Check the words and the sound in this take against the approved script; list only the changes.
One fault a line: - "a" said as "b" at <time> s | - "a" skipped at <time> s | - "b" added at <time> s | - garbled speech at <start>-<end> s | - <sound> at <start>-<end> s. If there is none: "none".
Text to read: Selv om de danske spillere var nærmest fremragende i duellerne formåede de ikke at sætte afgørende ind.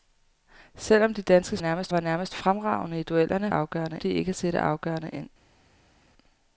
- "spillere" said as "nærmest" at 1.6 s
- "formåede" said as "afgørende" at 3.5 s